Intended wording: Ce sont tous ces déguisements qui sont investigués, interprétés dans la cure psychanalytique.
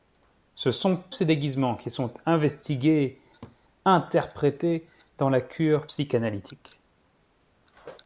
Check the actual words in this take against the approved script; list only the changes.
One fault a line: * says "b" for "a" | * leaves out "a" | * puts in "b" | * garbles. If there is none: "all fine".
* leaves out "tous"